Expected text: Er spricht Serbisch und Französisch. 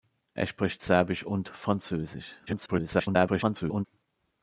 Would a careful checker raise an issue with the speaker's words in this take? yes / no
yes